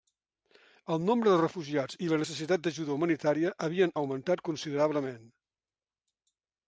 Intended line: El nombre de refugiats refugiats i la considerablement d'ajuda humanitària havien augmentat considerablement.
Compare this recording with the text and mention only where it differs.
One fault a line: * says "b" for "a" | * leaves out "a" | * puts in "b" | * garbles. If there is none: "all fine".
* leaves out "refugiats"
* says "necessitat" for "considerablement"